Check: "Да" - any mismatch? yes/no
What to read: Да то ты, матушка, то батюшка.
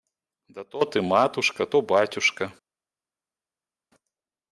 no